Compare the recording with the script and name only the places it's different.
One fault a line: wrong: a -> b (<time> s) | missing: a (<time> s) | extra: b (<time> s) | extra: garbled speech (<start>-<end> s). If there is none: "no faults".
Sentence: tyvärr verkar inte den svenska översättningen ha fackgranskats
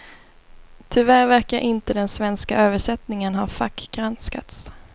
no faults